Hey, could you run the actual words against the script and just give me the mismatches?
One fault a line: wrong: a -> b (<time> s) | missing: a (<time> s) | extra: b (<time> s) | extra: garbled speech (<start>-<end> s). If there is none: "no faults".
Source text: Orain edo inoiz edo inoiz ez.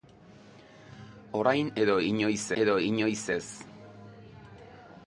no faults